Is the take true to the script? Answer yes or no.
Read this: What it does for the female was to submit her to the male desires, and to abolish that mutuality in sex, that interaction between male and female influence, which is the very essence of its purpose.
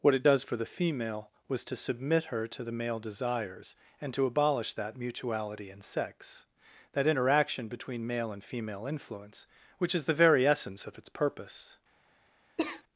yes